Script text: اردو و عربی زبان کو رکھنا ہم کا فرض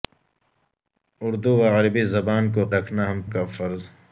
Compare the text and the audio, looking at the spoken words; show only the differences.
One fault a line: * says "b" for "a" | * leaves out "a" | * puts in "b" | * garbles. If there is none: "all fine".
all fine